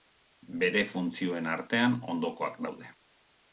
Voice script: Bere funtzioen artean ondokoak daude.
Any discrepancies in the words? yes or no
no